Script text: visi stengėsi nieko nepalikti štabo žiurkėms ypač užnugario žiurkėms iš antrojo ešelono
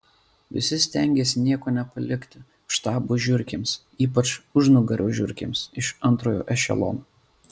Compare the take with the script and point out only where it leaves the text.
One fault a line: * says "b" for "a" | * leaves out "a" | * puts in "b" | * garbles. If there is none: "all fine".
all fine